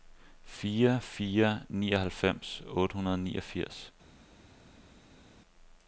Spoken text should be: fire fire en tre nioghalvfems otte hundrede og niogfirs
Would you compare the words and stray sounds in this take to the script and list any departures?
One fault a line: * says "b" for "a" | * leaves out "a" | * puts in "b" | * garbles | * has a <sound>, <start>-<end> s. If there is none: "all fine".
* leaves out "en tre"